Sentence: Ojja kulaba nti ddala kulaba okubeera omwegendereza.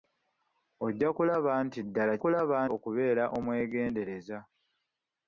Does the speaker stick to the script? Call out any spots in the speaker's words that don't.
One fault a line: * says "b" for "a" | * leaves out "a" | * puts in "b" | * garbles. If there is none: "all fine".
all fine